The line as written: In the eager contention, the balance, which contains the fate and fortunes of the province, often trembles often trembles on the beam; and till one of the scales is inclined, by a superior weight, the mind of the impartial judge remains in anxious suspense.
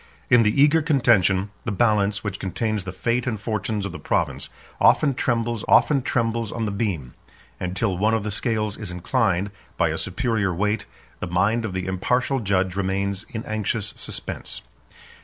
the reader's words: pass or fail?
pass